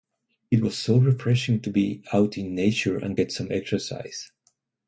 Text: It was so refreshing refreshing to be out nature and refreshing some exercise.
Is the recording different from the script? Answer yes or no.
yes